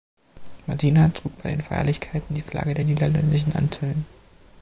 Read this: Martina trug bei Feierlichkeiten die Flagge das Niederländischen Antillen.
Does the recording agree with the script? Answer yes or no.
no